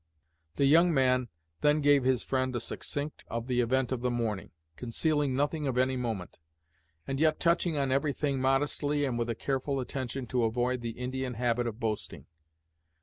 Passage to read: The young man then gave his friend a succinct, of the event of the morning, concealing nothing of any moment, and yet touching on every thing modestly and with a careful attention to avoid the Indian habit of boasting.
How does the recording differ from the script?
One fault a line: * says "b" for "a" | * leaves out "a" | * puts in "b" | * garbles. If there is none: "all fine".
all fine